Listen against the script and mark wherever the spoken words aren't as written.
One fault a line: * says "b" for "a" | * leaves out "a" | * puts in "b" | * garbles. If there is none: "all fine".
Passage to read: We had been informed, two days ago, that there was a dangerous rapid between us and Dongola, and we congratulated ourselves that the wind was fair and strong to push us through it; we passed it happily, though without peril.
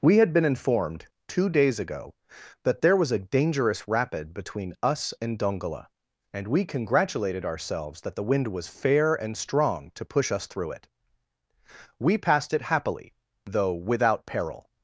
all fine